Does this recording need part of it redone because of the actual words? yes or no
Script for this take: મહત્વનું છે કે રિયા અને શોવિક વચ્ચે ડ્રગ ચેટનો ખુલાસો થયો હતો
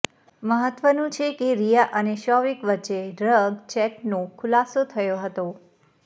no